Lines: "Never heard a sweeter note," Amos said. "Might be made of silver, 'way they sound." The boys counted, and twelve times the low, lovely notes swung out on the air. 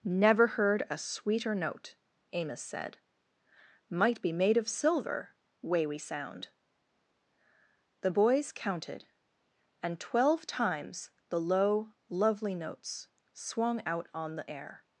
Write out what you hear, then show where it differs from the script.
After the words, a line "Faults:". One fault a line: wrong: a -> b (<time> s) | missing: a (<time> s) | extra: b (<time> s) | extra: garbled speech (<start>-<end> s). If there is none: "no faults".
"Never heard a sweeter note," Amos said. "Might be made of silver, 'way we sound." The boys counted, and twelve times the low, lovely notes swung out on the air.
Faults:
wrong: they -> we (5.8 s)